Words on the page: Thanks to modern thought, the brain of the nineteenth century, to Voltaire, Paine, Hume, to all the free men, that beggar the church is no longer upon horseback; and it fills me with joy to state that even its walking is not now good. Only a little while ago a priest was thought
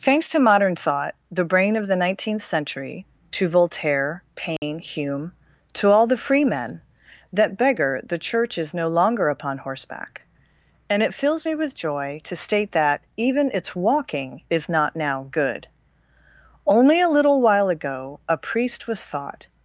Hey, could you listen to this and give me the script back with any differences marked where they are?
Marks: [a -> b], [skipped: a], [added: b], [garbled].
Thanks to modern thought, the brain of the nineteenth century, to Voltaire, Paine, Hume, to all the free men, that beggar the church is no longer upon horseback; and it fills me with joy to state that even its walking is not now good. Only a little while ago a priest was thought